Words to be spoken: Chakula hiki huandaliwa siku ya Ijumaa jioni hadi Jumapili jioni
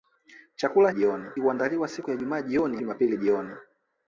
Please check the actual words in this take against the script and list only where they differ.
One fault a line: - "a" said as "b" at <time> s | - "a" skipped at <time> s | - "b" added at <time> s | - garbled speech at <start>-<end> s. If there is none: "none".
- "hiki" said as "jioni" at 0.9 s
- "hadi" skipped at 2.8 s